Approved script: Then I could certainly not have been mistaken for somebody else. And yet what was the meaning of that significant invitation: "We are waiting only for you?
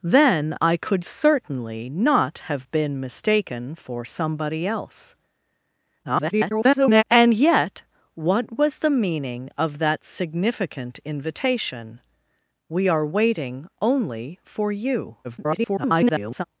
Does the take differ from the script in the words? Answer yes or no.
yes